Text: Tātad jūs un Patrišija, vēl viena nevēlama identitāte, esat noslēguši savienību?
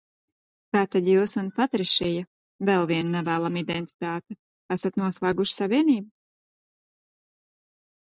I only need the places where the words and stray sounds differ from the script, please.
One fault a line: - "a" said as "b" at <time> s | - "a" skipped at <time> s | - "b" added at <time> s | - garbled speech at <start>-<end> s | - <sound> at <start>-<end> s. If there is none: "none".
none